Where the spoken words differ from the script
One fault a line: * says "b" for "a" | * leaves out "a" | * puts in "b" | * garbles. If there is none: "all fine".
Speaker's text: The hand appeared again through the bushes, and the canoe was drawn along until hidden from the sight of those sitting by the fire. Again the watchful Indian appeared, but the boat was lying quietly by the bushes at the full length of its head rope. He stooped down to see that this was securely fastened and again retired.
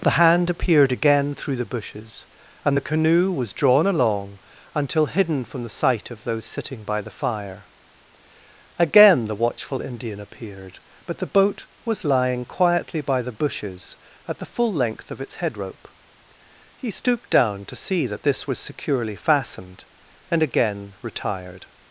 all fine